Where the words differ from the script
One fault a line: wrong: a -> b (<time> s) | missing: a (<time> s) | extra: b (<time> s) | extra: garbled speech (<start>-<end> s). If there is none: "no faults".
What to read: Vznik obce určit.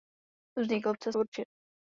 no faults